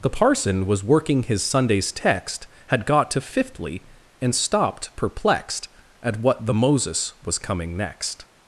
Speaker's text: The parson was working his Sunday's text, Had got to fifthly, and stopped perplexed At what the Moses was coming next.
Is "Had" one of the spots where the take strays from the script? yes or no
no